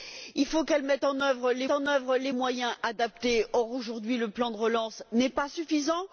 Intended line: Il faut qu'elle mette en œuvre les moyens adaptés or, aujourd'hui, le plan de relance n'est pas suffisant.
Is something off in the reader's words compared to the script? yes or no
yes